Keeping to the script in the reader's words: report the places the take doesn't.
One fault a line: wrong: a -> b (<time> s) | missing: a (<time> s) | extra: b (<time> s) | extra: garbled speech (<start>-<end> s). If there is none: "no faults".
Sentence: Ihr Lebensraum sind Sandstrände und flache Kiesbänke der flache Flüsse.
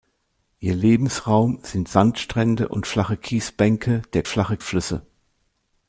no faults